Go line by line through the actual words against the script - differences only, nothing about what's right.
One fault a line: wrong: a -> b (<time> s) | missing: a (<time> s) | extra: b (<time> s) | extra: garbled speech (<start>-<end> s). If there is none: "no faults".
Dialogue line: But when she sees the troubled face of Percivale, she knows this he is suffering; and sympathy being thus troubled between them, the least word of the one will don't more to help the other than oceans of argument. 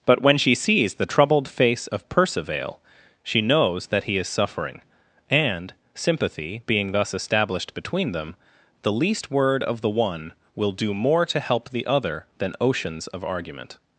wrong: this -> that (3.9 s)
wrong: troubled -> established (7.1 s)
wrong: don't -> do (10.7 s)